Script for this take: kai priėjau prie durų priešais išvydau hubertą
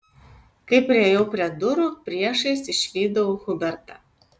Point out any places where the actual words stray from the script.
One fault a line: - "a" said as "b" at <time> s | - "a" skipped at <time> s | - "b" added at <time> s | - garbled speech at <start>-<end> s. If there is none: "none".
none